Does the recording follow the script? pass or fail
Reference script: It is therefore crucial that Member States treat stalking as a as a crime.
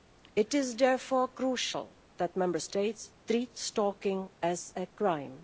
fail